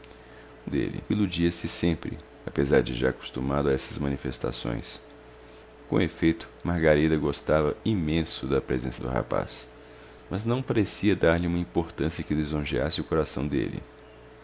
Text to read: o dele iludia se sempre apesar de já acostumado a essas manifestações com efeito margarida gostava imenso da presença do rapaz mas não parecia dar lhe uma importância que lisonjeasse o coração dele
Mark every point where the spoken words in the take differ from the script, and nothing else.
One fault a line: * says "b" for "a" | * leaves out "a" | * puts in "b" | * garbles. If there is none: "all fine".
all fine